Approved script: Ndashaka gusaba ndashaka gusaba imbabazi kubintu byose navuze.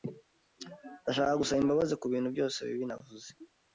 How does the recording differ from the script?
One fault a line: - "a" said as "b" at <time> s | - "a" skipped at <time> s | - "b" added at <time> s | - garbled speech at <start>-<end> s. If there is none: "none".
- "ndashaka gusaba" skipped at 1.6 s
- "bibi" added at 2.7 s